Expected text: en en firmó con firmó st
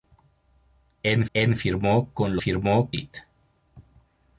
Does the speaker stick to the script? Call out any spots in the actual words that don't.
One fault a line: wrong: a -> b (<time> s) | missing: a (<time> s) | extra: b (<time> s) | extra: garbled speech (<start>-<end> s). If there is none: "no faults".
no faults